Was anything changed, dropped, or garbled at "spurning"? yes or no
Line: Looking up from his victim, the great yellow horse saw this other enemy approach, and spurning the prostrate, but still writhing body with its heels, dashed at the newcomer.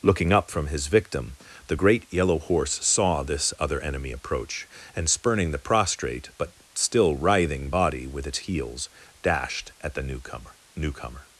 no